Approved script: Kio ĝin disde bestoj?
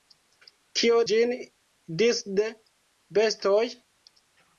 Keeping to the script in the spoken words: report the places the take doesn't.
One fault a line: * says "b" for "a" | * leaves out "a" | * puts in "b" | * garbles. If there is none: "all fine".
all fine